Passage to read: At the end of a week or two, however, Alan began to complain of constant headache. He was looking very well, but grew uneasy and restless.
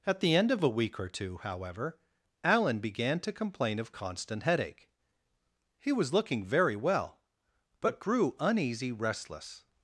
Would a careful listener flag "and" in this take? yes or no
yes